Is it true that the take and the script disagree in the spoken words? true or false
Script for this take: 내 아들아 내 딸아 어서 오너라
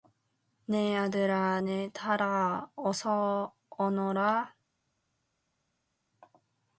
false